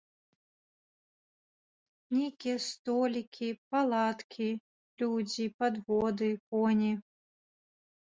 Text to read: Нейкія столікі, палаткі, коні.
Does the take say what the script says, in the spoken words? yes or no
no